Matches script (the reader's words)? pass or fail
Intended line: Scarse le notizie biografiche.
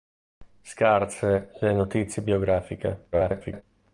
fail